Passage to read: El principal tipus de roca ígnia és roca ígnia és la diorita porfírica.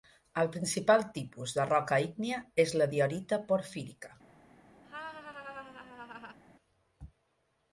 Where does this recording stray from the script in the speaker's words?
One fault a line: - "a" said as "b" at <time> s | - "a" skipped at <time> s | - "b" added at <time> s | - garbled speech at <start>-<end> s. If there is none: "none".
- "roca ígnia és" skipped at 2.7 s